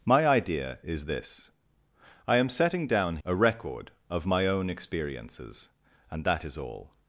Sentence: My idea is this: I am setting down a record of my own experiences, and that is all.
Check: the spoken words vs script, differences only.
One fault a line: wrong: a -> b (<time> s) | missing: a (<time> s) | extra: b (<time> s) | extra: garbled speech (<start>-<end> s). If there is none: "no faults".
no faults